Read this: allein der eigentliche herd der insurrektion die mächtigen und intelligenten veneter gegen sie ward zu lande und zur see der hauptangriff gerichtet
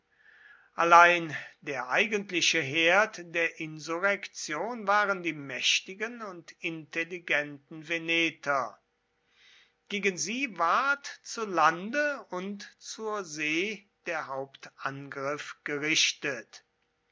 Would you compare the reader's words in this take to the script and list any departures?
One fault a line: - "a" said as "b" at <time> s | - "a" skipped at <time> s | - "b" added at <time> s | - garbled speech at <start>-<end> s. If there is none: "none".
- "waren" added at 4.9 s